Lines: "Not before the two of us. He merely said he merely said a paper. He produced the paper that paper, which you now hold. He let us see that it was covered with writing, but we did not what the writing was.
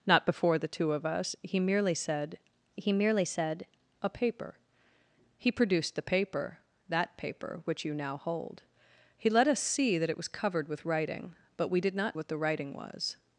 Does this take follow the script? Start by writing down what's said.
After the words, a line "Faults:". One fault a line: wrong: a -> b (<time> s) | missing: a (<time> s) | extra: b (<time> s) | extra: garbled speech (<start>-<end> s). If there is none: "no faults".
"Not before the two of us. He merely said he merely said a paper. He produced the paper that paper, which you now hold. He let us see that it was covered with writing, but we did not what the writing was.
Faults:
no faults